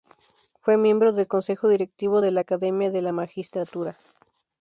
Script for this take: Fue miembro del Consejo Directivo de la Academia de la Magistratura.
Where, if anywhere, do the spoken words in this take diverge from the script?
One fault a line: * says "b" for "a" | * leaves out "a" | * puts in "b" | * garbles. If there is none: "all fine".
all fine